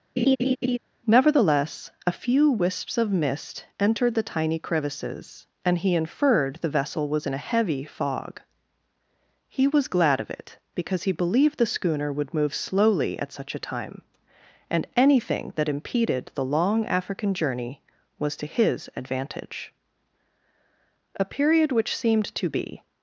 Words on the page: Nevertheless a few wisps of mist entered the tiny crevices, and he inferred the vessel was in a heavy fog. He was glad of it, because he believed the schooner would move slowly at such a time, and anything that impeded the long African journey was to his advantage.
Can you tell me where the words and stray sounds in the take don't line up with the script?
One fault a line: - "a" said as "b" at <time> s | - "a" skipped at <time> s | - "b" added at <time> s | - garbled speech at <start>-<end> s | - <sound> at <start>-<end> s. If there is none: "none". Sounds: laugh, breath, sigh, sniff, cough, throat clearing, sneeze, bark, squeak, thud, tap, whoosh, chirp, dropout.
- laugh at 0.2-0.8 s
- "A period which seemed to be" added at 21.2 s